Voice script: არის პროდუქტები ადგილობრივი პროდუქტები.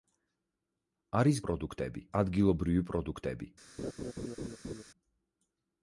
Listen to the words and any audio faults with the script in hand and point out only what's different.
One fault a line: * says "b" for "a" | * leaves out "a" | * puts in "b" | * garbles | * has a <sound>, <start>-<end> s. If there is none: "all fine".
* has a laugh, 3.8-4.8 s